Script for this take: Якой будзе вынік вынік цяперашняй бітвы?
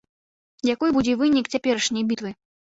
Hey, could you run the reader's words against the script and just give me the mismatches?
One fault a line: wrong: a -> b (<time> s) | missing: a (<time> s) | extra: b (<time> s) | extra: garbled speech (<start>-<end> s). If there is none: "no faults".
missing: вынік (1.5 s)